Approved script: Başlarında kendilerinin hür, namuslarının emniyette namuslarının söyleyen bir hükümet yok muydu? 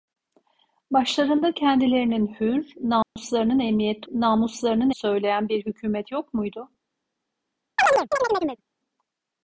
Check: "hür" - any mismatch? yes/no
no